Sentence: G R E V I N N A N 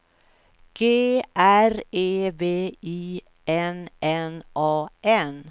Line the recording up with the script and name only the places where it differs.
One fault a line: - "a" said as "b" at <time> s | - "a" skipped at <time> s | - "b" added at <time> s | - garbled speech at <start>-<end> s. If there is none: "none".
none